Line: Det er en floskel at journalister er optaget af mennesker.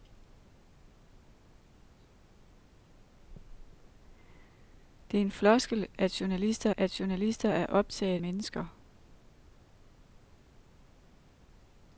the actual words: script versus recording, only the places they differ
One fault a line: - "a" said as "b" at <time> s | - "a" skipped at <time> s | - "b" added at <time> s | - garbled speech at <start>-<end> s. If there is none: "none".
- "at journalister" added at 6.8 s
- "af" skipped at 8.2 s